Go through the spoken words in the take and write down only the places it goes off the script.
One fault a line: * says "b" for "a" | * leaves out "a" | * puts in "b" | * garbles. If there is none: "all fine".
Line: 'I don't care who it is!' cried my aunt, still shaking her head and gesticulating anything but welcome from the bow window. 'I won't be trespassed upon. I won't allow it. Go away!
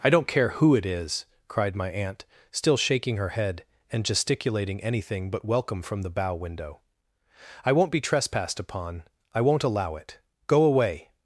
all fine